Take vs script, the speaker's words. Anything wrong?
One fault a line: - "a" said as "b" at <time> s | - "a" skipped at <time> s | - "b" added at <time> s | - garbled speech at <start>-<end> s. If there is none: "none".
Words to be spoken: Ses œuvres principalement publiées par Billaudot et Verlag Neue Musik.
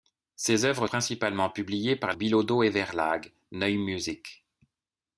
none